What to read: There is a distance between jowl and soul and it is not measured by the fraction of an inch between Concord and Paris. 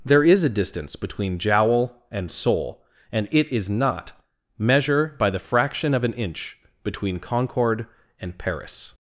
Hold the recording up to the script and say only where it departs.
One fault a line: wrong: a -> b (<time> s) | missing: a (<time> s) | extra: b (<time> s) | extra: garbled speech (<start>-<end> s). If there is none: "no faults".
wrong: measured -> measure (4.6 s)